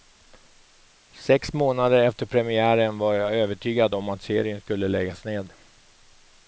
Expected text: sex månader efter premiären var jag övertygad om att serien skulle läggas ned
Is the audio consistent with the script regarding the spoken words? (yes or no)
yes